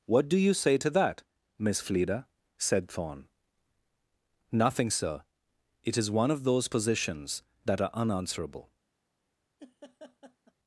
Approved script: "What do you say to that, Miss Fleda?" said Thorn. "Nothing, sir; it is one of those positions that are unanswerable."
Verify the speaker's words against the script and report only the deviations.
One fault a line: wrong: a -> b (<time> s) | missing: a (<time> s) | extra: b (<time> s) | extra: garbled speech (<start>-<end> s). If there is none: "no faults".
no faults